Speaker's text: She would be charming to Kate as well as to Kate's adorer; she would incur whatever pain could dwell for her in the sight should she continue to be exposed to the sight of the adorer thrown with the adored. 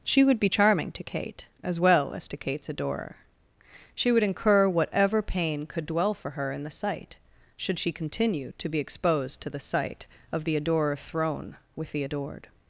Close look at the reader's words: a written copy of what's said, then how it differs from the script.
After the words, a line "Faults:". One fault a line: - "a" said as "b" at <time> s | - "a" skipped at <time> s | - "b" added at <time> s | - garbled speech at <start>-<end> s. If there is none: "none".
She would be charming to Kate as well as to Kate's adorer; she would incur whatever pain could dwell for her in the sight should she continue to be exposed to the sight of the adorer thrown with the adored.
Faults:
none